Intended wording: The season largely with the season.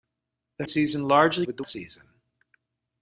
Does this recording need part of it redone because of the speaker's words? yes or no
no